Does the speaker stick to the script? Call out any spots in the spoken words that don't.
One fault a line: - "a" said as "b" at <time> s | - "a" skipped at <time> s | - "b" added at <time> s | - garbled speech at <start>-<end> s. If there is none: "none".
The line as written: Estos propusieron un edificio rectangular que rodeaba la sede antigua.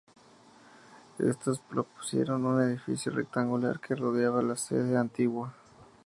none